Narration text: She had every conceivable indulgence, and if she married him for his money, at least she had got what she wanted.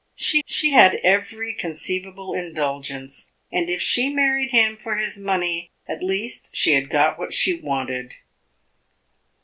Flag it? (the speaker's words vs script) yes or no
yes